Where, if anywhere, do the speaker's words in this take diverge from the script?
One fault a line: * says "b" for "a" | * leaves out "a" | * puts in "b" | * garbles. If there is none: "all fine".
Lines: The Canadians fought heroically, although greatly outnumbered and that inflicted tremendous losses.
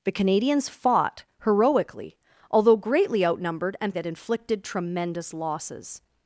all fine